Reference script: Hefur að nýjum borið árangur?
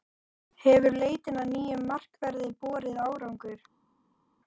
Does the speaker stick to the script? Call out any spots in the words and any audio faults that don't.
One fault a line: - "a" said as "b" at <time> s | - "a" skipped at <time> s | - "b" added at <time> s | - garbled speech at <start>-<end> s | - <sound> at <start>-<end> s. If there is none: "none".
- "leitin" added at 1.0 s
- "markverði" added at 1.9 s